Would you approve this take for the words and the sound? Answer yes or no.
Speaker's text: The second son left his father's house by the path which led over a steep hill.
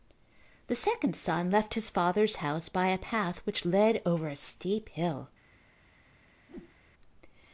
no